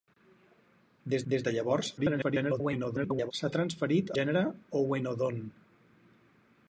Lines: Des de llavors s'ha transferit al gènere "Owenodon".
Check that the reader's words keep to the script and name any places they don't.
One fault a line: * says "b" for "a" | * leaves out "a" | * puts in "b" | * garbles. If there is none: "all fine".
* puts in "des"
* garbles
* leaves out "al"